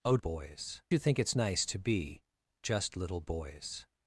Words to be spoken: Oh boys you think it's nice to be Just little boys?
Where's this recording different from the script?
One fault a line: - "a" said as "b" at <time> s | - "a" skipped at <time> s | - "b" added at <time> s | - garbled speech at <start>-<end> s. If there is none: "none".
none